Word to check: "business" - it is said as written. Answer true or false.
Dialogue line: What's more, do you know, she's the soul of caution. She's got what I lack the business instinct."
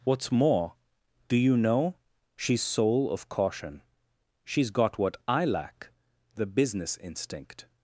true